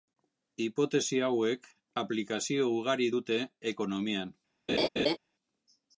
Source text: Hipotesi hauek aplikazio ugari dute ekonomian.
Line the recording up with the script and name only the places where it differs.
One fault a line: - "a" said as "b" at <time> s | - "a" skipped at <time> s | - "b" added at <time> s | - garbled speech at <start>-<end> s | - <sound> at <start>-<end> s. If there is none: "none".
- laugh at 4.7-5.2 s